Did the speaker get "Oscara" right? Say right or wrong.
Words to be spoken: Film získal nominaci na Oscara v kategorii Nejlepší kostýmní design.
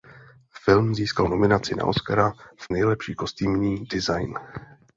right